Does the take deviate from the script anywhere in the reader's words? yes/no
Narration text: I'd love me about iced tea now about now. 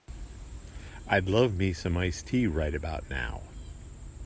yes